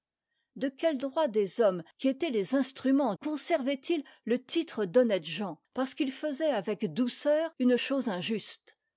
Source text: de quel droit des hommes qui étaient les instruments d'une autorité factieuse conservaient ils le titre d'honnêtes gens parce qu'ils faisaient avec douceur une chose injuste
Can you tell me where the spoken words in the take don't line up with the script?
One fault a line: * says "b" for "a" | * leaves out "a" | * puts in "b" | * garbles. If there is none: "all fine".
* leaves out "d'une autorité factieuse"